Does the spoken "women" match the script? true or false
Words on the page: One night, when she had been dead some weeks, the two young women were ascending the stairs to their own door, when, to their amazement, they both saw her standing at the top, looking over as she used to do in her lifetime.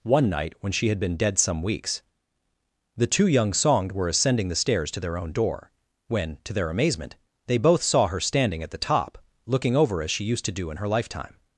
false